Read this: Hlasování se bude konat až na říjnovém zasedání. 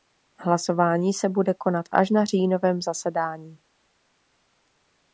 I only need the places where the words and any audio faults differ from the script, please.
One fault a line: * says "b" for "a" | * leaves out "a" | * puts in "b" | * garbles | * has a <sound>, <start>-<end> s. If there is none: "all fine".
all fine